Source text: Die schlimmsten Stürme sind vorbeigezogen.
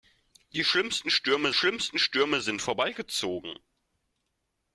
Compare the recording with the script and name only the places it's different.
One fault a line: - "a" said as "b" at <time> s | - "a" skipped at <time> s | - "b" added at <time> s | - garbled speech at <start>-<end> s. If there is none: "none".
- "schlimmsten Stürme" added at 1.5 s